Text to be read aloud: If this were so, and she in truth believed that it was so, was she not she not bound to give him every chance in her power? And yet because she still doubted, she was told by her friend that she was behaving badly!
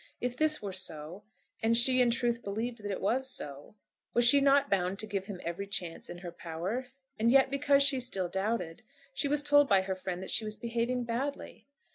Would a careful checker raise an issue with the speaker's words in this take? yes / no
yes